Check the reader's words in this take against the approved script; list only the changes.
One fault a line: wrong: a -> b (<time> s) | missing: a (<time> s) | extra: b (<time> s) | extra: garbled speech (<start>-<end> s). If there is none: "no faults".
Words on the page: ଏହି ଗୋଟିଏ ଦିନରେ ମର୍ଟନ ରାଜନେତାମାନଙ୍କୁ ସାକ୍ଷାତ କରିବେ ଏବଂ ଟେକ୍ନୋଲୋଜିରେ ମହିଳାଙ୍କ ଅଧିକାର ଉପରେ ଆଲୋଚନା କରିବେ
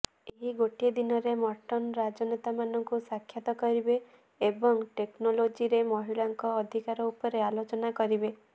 no faults